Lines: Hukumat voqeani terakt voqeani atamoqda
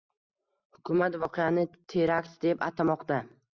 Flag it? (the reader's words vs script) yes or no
yes